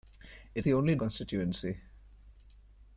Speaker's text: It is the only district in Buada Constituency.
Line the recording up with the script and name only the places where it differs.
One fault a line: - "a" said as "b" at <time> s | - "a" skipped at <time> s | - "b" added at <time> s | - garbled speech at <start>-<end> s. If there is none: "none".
- "is" skipped at 0.7 s
- "district in Buada" skipped at 1.0 s